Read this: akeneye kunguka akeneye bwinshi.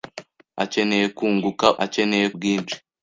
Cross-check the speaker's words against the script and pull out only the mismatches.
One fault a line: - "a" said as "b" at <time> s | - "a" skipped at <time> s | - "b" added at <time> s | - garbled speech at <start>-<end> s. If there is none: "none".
none